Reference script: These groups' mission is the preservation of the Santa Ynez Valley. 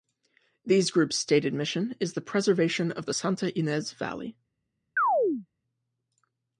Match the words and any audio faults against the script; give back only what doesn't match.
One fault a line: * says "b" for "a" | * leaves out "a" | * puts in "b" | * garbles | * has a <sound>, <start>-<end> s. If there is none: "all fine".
* puts in "stated"
* has a chirp, 5.0-5.5 s